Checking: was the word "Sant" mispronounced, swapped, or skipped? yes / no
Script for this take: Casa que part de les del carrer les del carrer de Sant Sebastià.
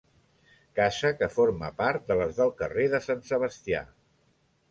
no